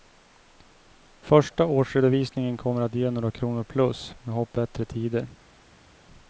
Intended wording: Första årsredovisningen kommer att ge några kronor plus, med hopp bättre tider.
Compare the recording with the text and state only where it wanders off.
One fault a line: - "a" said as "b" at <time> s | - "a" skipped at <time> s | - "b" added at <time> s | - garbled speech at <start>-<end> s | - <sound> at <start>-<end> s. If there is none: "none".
none